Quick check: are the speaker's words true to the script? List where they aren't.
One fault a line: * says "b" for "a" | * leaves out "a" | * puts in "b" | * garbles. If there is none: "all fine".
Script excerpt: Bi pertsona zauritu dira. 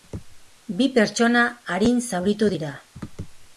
* puts in "arin"